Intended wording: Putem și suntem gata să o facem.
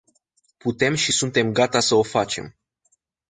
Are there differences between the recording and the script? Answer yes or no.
no